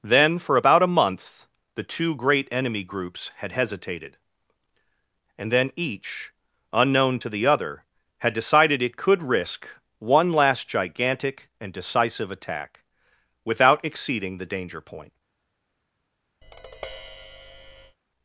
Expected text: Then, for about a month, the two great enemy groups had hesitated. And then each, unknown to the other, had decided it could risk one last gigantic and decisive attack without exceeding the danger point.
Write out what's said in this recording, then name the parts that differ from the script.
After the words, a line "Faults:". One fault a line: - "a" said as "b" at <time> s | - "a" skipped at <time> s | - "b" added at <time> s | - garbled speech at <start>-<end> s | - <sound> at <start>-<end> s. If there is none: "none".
Then, for about a month, the two great enemy groups had hesitated. And then each, unknown to the other, had decided it could risk one last gigantic and decisive attack without exceeding the danger point.
Faults:
- tap at 16.4-18.0 s